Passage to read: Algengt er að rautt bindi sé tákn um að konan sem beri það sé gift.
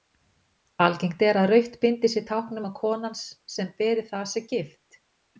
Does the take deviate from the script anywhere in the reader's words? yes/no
no